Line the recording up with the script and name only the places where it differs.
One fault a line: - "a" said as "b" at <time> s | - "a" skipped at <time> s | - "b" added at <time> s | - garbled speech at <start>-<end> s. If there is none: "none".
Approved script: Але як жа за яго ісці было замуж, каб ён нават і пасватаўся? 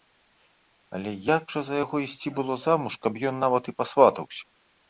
none